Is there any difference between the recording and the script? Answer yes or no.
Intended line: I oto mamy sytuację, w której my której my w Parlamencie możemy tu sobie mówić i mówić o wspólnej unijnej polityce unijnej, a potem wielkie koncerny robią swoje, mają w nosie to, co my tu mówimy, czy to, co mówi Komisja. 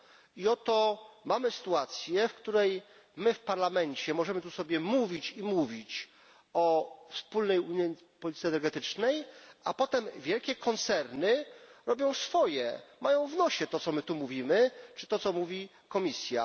yes